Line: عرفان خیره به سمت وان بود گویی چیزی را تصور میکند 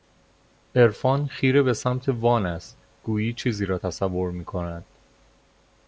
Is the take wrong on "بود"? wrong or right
wrong